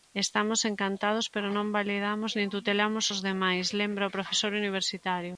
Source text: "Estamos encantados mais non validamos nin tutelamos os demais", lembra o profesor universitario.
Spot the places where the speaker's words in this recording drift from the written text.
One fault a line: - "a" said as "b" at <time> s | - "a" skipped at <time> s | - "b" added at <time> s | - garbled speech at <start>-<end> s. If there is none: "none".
- "mais" said as "pero" at 1.3 s